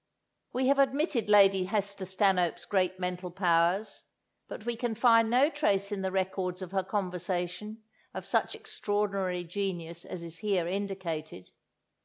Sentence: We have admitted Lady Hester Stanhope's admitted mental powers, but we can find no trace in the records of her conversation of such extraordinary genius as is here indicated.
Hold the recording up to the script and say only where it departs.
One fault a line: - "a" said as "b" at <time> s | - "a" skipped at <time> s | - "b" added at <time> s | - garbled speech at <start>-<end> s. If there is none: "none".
- "admitted" said as "great" at 2.6 s